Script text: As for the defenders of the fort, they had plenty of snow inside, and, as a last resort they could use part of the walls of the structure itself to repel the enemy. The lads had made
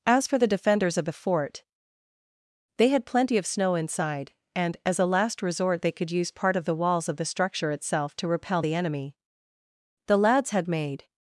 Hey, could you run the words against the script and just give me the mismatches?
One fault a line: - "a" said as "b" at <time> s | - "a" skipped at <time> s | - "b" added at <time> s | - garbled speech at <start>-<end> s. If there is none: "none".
none